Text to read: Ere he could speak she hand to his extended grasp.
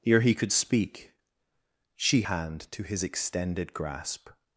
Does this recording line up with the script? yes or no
yes